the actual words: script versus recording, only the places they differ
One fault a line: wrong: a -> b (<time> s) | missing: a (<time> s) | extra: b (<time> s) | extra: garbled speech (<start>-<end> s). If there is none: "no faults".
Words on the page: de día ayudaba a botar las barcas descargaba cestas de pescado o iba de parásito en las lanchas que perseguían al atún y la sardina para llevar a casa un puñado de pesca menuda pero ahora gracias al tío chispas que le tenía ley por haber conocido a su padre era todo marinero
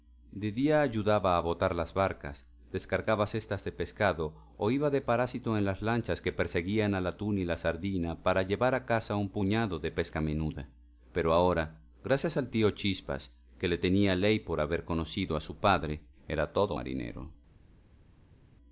no faults